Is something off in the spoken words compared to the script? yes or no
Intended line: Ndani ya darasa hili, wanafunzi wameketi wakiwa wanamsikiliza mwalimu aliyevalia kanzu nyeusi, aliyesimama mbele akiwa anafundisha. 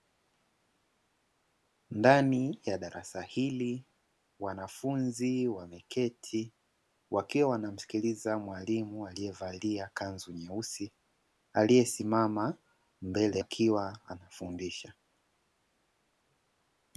no